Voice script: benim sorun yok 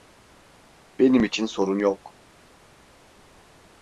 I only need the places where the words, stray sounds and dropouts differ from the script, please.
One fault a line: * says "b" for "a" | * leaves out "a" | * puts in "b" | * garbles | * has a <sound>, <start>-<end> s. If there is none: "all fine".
* puts in "için"